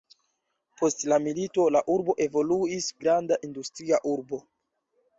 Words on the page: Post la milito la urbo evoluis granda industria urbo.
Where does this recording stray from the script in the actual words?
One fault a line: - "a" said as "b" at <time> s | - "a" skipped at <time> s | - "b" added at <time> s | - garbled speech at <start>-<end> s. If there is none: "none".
none